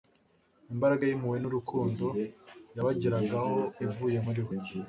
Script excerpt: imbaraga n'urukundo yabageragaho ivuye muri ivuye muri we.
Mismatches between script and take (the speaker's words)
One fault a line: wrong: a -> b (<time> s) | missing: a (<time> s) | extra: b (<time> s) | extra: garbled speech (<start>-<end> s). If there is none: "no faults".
extra: y'impuhwe (1.0 s)
missing: ivuye muri (4.4 s)